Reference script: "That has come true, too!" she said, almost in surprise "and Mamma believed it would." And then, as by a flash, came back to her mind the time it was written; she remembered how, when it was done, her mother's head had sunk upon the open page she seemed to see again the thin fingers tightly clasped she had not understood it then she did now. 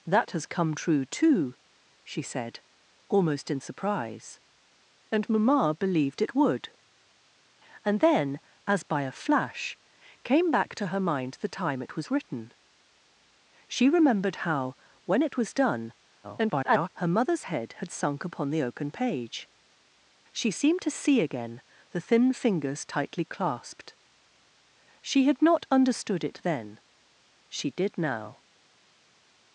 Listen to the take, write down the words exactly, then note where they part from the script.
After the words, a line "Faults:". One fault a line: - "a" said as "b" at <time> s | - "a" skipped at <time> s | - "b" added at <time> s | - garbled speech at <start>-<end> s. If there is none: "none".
"That has come true, too!" she said, almost in surprise "and Mamma believed it would." And then, as by a flash, came back to her mind the time it was written; she remembered how, when it was done, [garbled] her mother's head had sunk upon the open page she seemed to see again the thin fingers tightly clasped she had not understood it then she did now.
Faults:
- garbled speech at 16.2-16.9 s